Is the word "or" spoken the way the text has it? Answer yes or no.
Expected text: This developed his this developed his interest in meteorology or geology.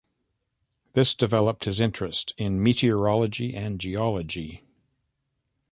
no